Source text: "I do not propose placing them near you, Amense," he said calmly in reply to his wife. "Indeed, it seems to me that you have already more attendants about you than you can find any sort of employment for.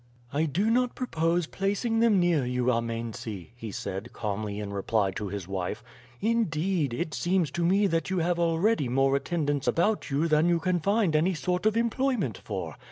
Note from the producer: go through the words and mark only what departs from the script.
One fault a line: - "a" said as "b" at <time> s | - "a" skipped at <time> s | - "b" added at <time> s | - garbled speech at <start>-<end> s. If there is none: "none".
none